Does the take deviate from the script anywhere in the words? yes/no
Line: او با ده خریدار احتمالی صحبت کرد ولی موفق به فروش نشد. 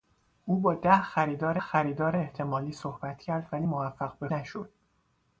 yes